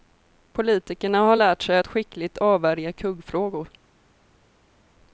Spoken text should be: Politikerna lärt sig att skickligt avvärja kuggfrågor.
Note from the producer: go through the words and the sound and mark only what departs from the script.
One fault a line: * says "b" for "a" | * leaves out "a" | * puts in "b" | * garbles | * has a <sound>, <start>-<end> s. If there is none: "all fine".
* puts in "har"